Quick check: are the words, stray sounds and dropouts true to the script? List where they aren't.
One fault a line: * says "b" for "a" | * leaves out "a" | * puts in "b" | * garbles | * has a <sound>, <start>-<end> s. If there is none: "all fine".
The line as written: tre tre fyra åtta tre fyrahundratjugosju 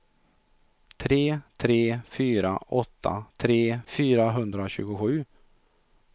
all fine